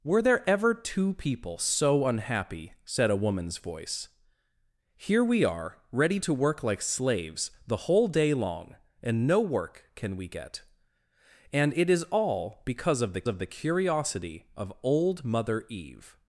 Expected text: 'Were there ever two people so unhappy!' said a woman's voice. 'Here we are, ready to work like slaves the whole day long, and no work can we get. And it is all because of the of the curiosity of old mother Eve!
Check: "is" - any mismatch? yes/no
no